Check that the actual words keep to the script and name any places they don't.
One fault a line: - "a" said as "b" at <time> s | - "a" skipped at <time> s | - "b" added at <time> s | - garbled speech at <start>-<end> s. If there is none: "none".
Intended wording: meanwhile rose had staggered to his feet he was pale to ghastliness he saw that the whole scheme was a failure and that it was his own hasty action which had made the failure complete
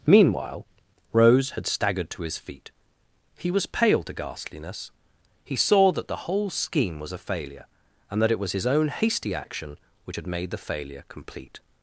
none